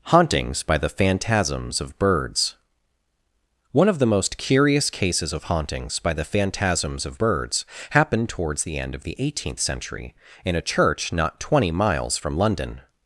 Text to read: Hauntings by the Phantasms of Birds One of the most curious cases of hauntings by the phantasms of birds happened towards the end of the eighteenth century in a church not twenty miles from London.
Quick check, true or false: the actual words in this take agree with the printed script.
true